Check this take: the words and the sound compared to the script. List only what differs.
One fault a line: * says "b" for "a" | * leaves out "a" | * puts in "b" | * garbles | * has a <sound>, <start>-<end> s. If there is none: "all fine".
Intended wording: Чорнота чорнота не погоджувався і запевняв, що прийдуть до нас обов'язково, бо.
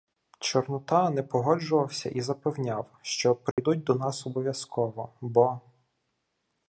* leaves out "чорнота"
* has a dropout, 3.5-3.6 s